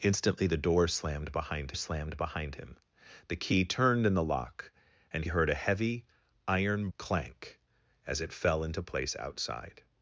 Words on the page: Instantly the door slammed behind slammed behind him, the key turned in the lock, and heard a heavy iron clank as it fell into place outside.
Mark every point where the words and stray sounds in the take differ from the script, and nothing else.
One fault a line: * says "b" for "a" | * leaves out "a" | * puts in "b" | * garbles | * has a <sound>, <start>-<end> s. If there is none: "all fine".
all fine